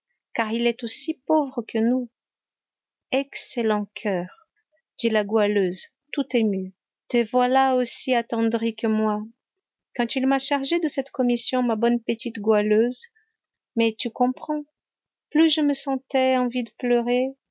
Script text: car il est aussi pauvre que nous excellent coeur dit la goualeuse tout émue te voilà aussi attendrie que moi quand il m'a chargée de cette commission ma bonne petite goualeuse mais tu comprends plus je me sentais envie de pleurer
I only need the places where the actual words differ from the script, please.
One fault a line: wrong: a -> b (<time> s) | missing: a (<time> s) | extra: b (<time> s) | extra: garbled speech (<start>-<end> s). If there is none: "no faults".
no faults